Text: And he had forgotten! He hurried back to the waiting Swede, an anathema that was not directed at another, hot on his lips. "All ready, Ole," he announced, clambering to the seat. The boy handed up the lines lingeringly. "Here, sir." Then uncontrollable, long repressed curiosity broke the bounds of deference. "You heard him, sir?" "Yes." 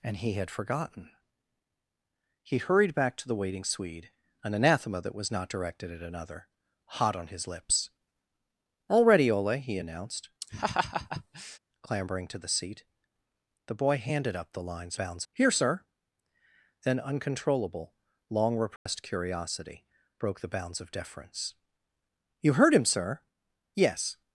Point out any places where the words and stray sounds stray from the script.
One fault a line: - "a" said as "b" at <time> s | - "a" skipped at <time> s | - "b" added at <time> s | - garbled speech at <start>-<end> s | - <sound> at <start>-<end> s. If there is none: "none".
- laugh at 10.4-11.6 s
- "lingeringly" said as "bounds" at 14.9 s
- dropout at 18.8-18.9 s